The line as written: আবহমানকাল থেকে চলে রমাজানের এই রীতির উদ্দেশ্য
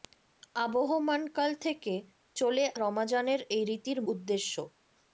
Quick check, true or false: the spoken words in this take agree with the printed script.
true